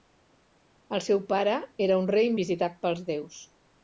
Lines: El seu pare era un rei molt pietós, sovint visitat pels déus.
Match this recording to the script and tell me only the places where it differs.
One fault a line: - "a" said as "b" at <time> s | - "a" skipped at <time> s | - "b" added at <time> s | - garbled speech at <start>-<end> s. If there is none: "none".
- "molt pietós sovint" skipped at 2.3 s